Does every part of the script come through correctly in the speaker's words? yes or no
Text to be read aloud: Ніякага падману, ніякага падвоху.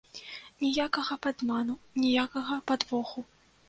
yes